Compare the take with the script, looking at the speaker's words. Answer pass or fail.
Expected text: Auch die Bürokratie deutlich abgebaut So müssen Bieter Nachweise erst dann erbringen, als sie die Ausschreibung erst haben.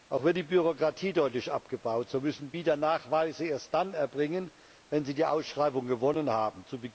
fail